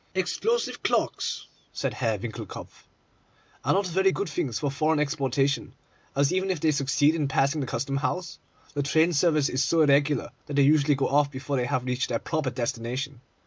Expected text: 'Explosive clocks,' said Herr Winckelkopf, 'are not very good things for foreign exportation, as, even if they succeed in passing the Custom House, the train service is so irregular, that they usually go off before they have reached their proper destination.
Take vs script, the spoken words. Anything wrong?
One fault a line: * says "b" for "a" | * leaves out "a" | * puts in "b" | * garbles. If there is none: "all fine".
all fine